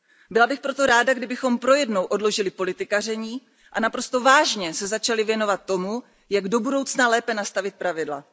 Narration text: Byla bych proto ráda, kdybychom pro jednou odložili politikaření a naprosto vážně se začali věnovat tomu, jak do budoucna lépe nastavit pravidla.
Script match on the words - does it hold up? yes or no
yes